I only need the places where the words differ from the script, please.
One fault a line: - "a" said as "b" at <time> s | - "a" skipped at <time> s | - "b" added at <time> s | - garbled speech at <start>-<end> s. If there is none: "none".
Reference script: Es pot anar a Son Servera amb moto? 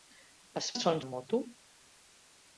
- "pot anar" skipped at 0.7 s
- "Servera" skipped at 1.0 s